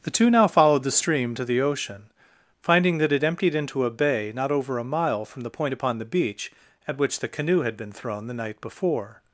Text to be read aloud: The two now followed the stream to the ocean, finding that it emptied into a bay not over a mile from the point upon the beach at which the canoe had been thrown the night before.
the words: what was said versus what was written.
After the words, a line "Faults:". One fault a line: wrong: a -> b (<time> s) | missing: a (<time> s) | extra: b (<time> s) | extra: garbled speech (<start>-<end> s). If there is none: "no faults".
The two now followed the stream to the ocean, finding that it emptied into a bay not over a mile from the point upon the beach at which the canoe had been thrown the night before.
Faults:
no faults